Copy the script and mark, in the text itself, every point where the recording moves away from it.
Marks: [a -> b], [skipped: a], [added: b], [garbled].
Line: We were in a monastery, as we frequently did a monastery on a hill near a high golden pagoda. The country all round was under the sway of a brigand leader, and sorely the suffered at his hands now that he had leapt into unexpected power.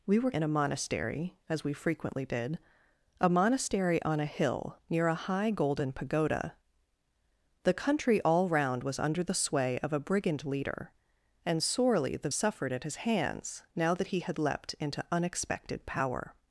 We were in a monastery, as we frequently did a monastery on a hill near a high golden pagoda. The country all round was under the sway of a brigand leader, and sorely the suffered at his hands now that he had leapt into unexpected power.